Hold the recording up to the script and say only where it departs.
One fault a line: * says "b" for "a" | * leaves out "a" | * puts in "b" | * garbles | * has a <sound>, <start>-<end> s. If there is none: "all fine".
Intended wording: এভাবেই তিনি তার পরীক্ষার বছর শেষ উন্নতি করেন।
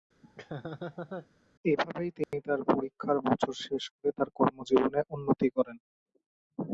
* has a laugh, 0.2-1.3 s
* has a dropout, 2.2-2.3 s
* puts in "করে তার কর্মজীবনে"